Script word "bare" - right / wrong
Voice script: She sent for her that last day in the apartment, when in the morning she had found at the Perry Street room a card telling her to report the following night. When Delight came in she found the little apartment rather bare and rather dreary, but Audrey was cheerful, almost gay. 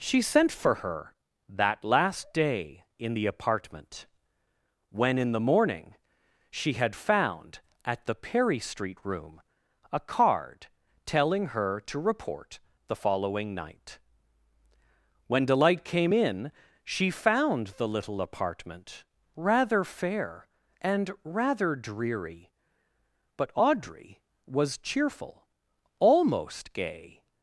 wrong